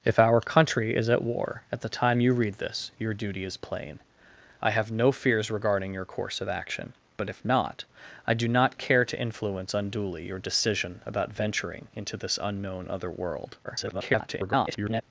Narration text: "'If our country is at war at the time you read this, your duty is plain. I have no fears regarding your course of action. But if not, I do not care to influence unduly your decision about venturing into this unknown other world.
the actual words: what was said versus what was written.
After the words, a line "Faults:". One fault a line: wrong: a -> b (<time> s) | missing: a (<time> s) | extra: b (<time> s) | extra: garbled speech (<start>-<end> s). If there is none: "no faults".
"'If our country is at war at the time you read this, your duty is plain. I have no fears regarding your course of action. But if not, I do not care to influence unduly your decision about venturing into this unknown other world. [garbled]
Faults:
extra: garbled speech (13.6-15.0 s)